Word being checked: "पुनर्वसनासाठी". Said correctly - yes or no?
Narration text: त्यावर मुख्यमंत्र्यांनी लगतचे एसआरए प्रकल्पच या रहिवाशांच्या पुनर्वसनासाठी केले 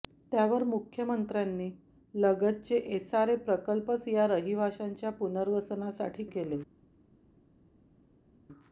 yes